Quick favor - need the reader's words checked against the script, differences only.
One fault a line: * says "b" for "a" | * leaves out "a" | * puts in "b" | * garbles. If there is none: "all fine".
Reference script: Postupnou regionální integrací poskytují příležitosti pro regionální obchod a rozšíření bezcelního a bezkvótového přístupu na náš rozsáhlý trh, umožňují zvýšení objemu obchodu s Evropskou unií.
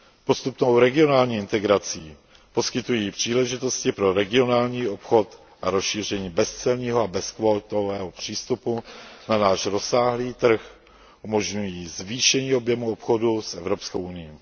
all fine